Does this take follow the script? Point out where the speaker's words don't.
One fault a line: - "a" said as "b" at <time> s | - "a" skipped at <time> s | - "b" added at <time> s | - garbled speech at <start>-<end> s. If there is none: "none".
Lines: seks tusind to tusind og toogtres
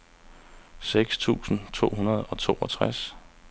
- "tusind" said as "hundrede" at 2.0 s